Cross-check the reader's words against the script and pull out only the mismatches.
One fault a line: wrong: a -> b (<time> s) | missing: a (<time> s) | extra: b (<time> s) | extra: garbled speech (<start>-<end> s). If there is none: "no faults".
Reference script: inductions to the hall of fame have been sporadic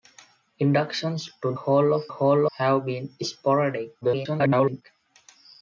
missing: the (1.5 s)
wrong: fame -> hall (2.1 s)
extra: garbled speech (4.0-4.8 s)